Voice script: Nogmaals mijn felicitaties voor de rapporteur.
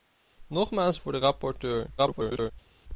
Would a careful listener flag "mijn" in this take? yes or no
yes